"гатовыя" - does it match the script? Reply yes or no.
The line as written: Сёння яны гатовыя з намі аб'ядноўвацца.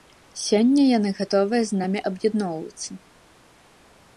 yes